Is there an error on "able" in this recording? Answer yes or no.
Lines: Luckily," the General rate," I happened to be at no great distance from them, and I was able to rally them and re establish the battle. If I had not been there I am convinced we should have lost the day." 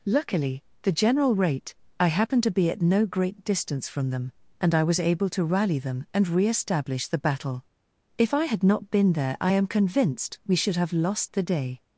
no